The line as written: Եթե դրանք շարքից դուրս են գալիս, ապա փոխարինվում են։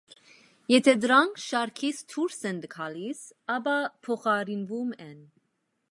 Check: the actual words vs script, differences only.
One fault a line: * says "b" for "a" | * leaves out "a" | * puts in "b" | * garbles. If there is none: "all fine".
all fine